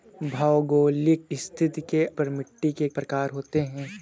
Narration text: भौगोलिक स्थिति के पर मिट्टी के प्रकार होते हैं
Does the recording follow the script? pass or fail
pass